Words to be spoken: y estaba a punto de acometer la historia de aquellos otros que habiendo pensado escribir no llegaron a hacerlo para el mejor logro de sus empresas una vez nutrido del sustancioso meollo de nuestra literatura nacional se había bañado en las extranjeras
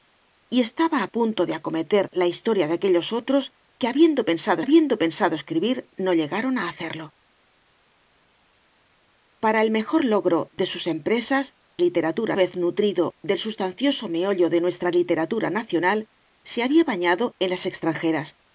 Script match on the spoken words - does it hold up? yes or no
no